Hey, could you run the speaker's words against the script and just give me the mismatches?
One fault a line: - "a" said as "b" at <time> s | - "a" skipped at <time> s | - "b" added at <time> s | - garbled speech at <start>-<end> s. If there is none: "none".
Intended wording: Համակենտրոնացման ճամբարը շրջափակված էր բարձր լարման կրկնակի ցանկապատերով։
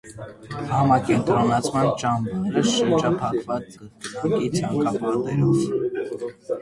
- "էր բարձր լարման" skipped at 3.8 s